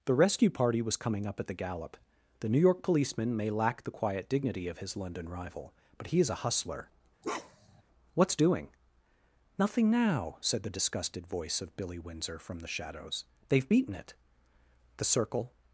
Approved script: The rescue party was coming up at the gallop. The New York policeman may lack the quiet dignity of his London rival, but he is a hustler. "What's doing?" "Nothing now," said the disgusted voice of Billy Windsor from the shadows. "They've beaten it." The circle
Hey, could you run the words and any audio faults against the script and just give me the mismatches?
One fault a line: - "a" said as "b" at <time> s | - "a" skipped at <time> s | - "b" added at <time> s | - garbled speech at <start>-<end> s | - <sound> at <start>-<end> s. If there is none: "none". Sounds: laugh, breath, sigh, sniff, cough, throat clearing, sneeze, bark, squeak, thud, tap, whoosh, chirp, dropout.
- bark at 7.2-7.8 s